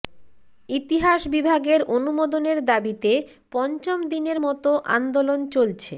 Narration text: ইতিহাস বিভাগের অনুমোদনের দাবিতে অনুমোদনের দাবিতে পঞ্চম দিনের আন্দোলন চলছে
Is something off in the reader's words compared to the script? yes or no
yes